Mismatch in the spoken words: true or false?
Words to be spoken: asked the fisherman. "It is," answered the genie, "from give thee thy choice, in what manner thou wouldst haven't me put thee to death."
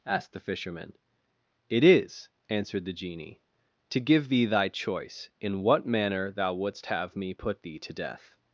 true